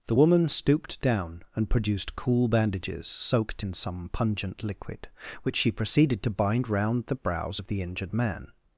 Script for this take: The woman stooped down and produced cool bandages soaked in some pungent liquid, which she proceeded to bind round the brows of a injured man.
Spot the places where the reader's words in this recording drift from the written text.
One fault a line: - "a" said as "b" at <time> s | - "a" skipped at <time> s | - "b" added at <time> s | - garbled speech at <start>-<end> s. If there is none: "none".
- "a" said as "the" at 7.7 s